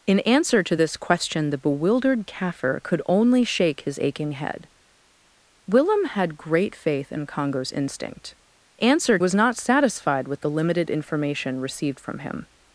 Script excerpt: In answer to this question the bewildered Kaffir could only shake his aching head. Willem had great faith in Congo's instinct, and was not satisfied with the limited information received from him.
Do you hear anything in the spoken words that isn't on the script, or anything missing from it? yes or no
yes